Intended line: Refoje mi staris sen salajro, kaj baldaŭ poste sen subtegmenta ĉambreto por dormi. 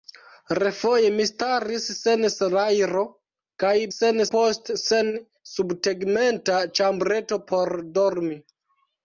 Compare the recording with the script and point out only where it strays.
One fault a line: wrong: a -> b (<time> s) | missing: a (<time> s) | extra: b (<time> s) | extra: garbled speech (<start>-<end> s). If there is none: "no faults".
wrong: baldaŭ -> sen (3.9 s)